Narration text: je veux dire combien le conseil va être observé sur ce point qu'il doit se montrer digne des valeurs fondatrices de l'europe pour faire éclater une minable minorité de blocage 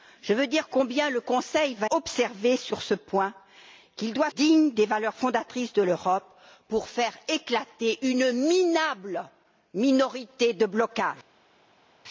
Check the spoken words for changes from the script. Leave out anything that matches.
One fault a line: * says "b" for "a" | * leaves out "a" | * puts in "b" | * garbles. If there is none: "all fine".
* leaves out "être"
* leaves out "se montrer"